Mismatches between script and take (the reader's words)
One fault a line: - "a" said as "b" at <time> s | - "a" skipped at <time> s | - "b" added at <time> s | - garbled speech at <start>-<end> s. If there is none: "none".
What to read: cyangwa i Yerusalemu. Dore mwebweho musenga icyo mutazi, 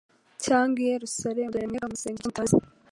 none